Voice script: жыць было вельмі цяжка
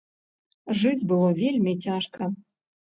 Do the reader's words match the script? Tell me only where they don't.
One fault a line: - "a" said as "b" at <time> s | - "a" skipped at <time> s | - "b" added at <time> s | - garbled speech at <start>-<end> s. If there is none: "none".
none